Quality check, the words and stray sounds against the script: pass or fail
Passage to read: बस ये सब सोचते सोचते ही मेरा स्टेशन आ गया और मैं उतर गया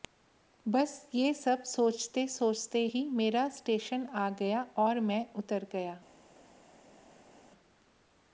pass